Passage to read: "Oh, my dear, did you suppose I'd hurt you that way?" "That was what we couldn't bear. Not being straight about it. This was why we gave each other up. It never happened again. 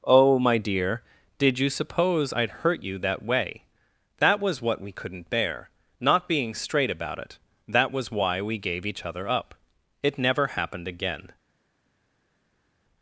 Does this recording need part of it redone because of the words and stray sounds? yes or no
yes